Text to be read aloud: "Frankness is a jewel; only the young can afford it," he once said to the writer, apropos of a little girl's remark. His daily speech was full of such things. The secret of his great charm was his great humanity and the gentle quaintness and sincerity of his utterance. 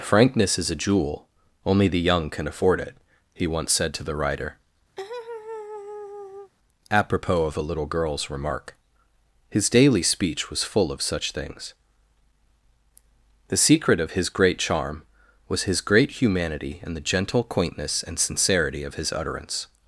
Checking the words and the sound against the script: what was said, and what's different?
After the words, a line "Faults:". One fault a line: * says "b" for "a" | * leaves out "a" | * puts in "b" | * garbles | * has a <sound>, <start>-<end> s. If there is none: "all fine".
"Frankness is a jewel; only the young can afford it," he once said to the writer, apropos of a little girl's remark. His daily speech was full of such things. The secret of his great charm was his great humanity and the gentle quaintness and sincerity of his utterance.
Faults:
* has a laugh, 5.0-6.5 s